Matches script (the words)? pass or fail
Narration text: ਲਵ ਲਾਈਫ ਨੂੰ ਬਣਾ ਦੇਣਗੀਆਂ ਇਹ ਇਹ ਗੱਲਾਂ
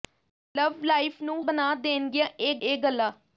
pass